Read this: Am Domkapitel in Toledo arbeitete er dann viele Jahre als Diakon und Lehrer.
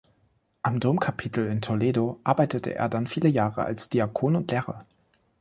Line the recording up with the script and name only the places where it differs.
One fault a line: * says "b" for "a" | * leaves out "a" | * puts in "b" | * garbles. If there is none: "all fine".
all fine